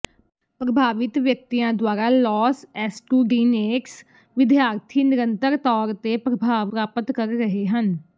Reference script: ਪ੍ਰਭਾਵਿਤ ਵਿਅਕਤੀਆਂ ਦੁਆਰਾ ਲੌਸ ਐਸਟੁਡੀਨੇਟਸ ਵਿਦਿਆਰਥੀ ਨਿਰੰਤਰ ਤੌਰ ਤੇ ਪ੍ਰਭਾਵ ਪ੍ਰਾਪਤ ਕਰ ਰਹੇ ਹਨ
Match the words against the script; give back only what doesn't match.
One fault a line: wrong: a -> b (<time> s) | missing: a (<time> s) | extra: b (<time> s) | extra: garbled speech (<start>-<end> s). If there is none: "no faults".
no faults